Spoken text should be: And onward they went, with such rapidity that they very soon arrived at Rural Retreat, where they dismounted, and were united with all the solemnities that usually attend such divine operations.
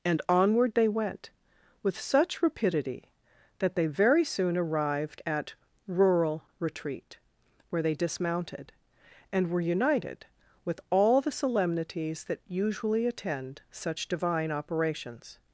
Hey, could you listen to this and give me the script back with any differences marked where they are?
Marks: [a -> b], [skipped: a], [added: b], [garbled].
And onward they went, with such rapidity that they very soon arrived at Rural Retreat, where they dismounted, and were united with all the solemnities that usually attend such divine operations.